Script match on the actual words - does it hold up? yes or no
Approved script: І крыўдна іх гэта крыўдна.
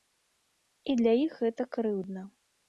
no